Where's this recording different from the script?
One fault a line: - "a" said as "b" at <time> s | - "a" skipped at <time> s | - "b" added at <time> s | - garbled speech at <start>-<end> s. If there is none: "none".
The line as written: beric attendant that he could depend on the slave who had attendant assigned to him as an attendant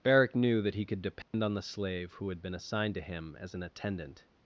- "attendant" said as "knew" at 0.3 s
- "attendant" said as "been" at 2.4 s